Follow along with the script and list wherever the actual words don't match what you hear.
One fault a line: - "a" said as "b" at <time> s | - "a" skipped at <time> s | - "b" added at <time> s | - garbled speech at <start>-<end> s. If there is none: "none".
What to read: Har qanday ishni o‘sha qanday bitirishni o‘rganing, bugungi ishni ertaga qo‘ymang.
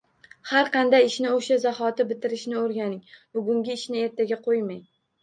- "qanday" said as "zahoti" at 1.6 s